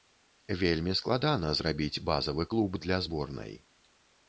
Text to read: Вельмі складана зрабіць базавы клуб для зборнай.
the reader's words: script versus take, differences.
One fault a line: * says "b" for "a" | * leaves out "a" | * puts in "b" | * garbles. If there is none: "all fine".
all fine